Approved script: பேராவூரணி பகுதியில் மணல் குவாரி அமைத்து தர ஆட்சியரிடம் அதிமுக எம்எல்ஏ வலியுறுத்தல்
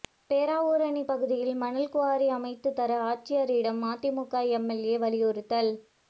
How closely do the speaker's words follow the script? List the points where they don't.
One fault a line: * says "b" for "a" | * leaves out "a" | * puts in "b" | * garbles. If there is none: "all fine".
all fine